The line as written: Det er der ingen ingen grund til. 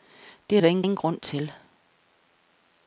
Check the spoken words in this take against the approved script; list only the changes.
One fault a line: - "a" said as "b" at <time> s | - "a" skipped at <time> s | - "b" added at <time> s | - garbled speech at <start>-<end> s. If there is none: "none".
none